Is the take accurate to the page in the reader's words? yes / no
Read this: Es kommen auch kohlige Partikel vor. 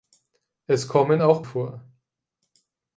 no